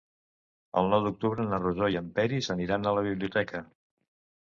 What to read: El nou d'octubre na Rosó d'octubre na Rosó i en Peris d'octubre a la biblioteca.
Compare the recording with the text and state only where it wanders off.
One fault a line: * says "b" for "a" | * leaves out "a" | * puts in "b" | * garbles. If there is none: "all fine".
* leaves out "d'octubre na Rosó"
* says "aniran" for "d'octubre"